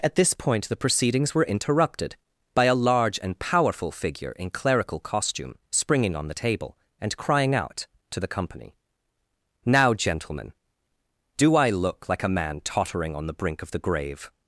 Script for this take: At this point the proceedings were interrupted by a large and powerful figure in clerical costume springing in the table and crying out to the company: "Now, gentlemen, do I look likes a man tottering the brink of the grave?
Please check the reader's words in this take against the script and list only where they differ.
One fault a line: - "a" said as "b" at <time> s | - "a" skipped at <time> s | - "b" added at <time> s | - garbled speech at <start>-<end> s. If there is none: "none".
- "in" said as "on" at 6.2 s
- "likes" said as "like" at 12.1 s
- "on" added at 13.1 s